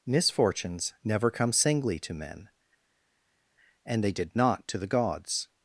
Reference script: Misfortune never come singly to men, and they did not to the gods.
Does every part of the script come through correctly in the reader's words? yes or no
no